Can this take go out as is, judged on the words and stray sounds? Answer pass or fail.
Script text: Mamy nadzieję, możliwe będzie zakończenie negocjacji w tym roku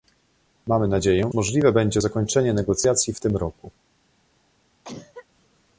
fail